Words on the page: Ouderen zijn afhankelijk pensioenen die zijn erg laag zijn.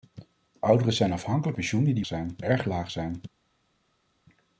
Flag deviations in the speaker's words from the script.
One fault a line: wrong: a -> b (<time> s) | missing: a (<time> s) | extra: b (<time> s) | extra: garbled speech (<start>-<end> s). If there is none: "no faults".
no faults